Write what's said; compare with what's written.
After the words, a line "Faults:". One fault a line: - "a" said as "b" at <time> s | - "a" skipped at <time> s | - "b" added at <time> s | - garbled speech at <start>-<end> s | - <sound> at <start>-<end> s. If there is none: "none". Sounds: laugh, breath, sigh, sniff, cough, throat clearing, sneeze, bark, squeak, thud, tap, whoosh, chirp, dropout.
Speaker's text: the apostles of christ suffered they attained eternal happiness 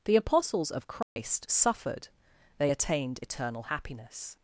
the apostles of christ suffered they attained eternal happiness
Faults:
- dropout at 1.0-1.2 s